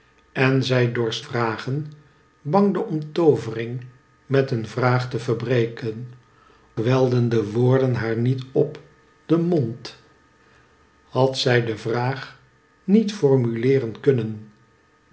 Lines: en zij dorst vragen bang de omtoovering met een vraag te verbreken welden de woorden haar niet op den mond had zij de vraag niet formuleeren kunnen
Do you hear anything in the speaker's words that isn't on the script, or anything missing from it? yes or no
no